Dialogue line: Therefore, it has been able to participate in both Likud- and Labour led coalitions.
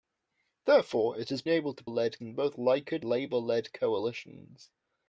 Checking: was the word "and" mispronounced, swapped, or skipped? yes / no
yes